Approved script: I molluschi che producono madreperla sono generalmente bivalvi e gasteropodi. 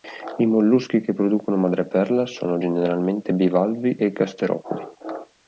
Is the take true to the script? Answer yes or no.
yes